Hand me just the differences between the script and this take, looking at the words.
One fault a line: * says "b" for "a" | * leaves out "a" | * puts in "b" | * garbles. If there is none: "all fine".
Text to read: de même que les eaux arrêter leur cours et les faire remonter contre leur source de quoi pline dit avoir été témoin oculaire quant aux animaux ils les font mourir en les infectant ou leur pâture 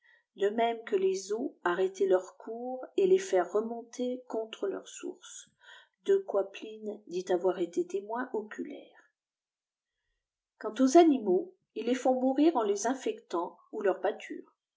all fine